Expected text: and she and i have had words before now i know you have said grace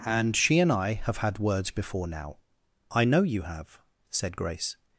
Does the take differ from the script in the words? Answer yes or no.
no